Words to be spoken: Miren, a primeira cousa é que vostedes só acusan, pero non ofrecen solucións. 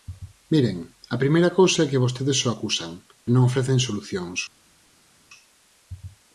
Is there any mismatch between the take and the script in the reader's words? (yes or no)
yes